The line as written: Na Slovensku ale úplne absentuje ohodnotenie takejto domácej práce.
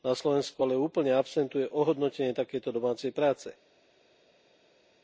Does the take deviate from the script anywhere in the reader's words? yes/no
no